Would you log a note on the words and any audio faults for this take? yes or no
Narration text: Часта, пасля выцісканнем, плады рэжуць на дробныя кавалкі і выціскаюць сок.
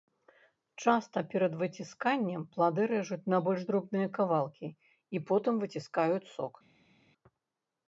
yes